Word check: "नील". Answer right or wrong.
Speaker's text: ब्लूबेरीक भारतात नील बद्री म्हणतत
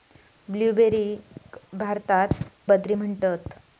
wrong